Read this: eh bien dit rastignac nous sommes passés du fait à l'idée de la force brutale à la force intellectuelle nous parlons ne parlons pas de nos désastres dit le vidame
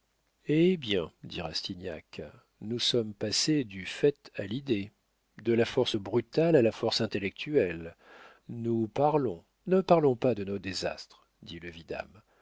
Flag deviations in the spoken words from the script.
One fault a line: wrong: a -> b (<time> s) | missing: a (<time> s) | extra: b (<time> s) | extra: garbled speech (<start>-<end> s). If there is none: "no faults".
no faults